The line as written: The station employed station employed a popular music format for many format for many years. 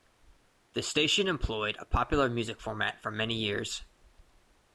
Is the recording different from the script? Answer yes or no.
yes